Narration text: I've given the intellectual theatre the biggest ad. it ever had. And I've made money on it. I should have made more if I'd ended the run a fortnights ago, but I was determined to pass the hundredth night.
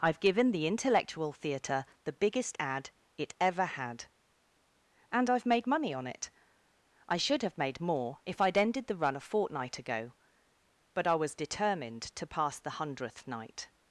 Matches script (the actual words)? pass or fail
fail